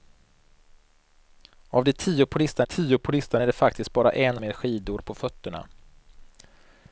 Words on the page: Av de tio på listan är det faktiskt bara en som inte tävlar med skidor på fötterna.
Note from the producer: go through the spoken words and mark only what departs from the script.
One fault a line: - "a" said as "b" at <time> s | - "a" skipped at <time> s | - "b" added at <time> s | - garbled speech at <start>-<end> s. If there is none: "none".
- "tio på listan" added at 2.6 s
- "som inte tävlar" skipped at 4.4 s